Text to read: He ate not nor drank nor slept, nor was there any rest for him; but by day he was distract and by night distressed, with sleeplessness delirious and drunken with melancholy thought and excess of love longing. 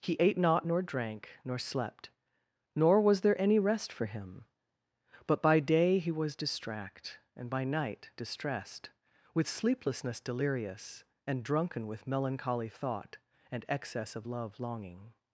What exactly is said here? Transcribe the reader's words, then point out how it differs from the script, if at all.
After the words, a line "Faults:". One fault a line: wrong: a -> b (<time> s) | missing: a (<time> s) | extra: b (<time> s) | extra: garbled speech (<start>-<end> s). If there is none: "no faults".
He ate not nor drank nor slept, nor was there any rest for him; but by day he was distract and by night distressed, with sleeplessness delirious and drunken with melancholy thought and excess of love longing.
Faults:
no faults